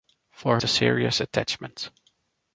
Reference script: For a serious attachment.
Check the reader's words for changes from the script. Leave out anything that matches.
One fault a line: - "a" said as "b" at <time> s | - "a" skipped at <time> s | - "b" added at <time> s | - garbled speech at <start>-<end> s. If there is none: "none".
none